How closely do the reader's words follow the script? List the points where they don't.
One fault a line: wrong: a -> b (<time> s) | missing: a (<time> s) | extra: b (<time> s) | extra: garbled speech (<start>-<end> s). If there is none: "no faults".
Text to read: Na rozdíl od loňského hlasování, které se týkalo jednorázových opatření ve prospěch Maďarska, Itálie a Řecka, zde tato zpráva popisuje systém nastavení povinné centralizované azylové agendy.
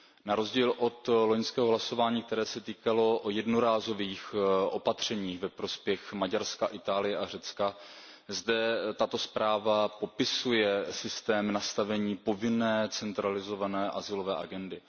no faults